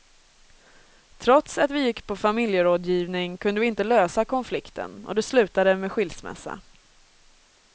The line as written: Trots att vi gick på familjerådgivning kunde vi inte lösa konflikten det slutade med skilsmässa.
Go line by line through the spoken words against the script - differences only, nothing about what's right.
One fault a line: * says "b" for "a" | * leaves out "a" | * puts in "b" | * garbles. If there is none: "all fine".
* puts in "och"